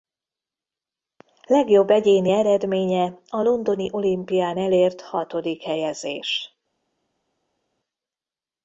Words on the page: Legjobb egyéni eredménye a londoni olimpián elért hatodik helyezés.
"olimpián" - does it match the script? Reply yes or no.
yes